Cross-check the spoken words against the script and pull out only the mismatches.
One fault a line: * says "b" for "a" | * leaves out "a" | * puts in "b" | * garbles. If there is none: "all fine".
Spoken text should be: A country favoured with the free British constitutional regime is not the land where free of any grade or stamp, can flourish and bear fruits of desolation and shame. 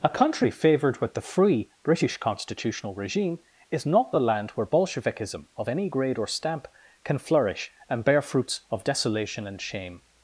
* says "bolshevikism" for "free"